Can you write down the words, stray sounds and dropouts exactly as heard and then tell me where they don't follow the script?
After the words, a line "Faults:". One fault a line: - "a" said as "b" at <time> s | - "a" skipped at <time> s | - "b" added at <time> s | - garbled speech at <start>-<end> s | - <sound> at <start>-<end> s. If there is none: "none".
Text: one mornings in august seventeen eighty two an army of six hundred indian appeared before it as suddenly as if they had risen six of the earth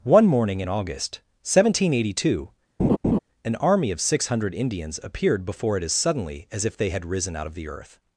one morning in august seventeen eighty two an army of six hundred indians appeared before it as suddenly as if they had risen out of the earth
Faults:
- "mornings" said as "morning" at 0.2 s
- laugh at 2.8-3.2 s
- "indian" said as "indians" at 4.5 s
- "six" said as "out" at 7.3 s